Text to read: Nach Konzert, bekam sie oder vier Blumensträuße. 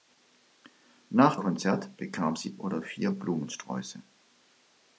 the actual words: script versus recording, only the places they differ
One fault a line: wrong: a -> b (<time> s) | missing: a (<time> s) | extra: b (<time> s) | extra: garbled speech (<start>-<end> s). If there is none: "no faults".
no faults